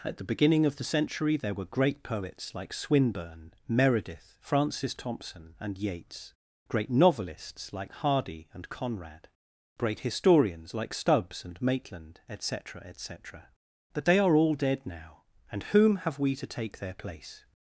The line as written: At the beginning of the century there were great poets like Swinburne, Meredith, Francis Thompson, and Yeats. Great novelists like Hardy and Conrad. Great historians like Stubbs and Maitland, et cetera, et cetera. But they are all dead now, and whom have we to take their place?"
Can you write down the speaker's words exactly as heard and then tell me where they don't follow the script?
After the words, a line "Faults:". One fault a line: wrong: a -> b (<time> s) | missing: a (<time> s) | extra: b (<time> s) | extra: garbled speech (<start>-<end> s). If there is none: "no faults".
At the beginning of the century there were great poets like Swinburne, Meredith, Francis Thompson, and Yeats. Great novelists like Hardy and Conrad. Great historians like Stubbs and Maitland, et cetera, et cetera. But they are all dead now, and whom have we to take their place?"
Faults:
no faults